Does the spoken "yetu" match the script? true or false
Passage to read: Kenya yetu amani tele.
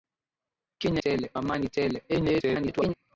false